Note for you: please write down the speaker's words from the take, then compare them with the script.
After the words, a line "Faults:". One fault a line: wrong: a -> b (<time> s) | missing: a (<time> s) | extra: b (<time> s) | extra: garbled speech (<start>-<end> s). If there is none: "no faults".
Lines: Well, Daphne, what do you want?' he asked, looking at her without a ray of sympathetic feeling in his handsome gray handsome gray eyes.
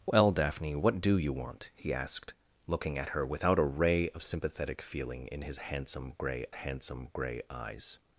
Well, Daphne, what do you want?' he asked, looking at her without a ray of sympathetic feeling in his handsome gray handsome gray eyes.
Faults:
no faults